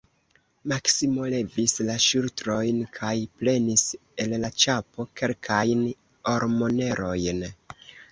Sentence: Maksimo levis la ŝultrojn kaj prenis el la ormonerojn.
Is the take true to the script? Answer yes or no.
no